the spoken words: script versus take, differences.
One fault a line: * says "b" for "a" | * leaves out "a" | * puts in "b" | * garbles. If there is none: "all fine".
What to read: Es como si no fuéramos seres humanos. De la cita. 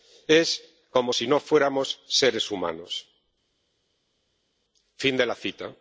* puts in "Fin"